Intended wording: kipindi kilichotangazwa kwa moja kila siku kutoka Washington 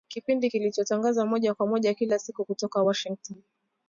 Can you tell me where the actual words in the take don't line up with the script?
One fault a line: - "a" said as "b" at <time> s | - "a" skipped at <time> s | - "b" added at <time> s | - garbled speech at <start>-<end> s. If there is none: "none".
- "moja" added at 1.3 s